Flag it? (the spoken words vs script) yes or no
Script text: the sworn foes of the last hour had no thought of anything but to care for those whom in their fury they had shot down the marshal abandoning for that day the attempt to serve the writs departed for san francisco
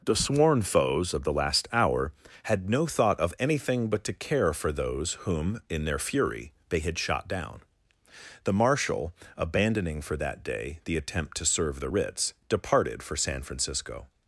no